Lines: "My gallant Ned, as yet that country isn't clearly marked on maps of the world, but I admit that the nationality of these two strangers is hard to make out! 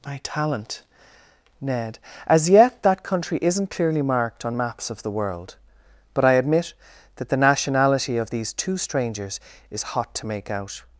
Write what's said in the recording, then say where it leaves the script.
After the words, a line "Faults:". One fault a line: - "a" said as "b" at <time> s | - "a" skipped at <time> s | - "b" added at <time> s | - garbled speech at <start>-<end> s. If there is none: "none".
"My talent Ned, as yet that country isn't clearly marked on maps of the world, but I admit that the nationality of these two strangers is hot to make out!
Faults:
- "gallant" said as "talent" at 0.2 s
- "hard" said as "hot" at 9.8 s